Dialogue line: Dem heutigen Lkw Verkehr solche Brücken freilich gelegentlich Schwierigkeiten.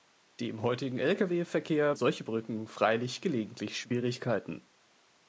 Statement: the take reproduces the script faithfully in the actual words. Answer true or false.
true